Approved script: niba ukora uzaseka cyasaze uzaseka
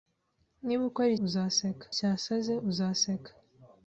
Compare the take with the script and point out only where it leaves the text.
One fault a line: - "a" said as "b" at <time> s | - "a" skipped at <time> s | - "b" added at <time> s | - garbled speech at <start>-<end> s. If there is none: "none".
none